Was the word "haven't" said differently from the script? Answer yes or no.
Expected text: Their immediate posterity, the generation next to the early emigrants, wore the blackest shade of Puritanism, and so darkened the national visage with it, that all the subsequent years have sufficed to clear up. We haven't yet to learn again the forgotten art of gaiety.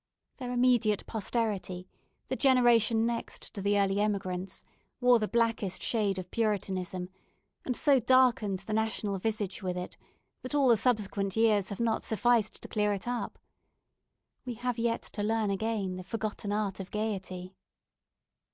yes